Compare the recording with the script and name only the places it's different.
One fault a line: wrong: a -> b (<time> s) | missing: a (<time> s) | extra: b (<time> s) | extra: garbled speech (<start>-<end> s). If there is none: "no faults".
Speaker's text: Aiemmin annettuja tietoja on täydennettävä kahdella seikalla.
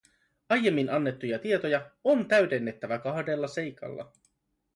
no faults